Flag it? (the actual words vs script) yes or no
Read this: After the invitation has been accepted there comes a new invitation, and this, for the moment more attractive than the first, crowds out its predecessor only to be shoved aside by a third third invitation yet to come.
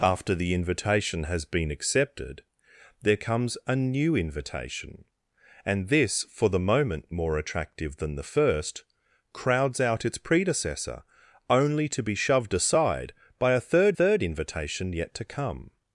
no